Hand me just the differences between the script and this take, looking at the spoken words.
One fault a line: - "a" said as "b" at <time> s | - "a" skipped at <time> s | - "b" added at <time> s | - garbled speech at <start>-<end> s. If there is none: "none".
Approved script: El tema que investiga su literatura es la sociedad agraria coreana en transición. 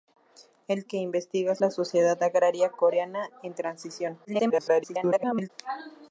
- "tema" skipped at 0.9 s
- "su literatura es" skipped at 1.6 s
- garbled speech at 4.2-5.5 s